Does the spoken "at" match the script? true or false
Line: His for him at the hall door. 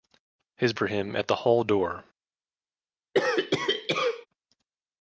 true